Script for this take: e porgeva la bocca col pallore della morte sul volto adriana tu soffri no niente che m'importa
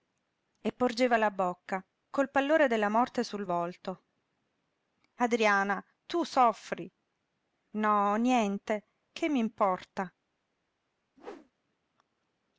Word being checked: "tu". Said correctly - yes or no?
yes